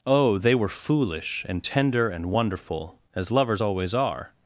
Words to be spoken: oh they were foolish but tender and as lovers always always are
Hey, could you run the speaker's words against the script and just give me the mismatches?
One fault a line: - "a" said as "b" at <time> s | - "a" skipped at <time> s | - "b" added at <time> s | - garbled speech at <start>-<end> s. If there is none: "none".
- "but" said as "and" at 1.5 s
- "wonderful" added at 2.3 s
- "always" skipped at 3.9 s